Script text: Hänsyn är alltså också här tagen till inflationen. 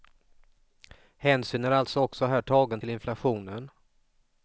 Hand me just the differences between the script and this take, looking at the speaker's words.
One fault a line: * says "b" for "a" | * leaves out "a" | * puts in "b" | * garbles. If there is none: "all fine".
all fine